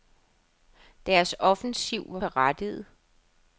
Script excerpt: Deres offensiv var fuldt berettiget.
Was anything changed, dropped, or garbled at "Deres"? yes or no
no